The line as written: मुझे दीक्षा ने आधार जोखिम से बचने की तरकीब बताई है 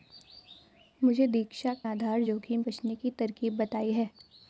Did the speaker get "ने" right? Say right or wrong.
wrong